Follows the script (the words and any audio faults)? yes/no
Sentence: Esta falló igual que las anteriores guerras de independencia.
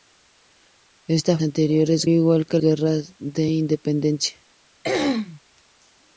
no